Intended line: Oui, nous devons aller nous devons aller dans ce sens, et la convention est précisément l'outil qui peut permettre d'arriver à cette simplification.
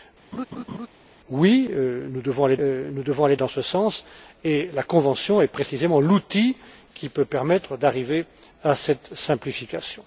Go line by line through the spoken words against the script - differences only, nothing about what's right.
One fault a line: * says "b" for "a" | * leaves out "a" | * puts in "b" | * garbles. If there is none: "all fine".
all fine